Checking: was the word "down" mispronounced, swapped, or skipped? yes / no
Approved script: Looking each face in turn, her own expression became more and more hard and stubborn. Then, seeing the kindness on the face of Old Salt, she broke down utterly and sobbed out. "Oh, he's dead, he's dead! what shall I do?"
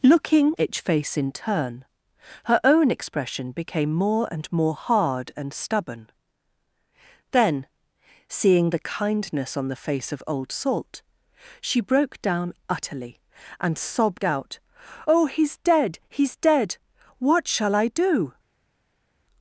no